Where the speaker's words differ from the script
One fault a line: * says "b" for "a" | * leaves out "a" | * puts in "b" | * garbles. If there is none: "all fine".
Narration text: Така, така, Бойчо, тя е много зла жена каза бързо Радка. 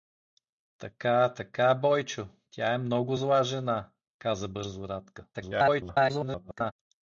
* garbles